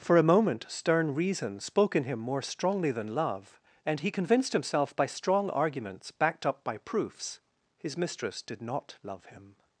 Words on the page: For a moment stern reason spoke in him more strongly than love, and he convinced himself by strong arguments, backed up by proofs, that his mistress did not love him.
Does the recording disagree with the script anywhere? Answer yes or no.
yes